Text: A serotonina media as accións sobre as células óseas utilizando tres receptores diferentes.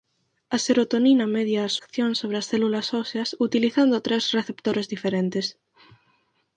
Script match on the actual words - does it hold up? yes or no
yes